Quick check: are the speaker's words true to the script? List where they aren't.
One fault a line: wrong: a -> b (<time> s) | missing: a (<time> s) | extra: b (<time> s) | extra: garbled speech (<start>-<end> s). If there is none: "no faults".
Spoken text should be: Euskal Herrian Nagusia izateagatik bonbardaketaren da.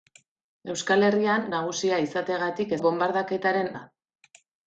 no faults